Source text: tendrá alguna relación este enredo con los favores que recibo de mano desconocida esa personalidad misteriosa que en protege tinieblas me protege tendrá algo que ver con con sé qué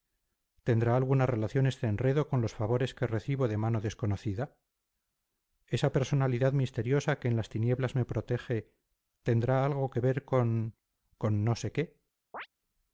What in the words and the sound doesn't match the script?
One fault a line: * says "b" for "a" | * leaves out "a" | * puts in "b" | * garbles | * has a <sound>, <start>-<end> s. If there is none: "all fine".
* says "las" for "protege"
* puts in "no"
* has a chirp, 12.3-12.5 s